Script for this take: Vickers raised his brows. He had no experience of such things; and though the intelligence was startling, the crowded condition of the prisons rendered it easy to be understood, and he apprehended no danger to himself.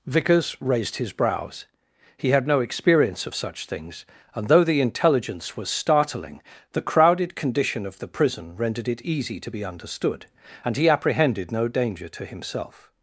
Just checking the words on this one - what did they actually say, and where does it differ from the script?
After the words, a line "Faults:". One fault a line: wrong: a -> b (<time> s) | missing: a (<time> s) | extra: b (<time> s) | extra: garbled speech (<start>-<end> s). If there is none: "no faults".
Vickers raised his brows. He had no experience of such things; and though the intelligence was startling, the crowded condition of the prison rendered it easy to be understood, and he apprehended no danger to himself.
Faults:
wrong: prisons -> prison (8.1 s)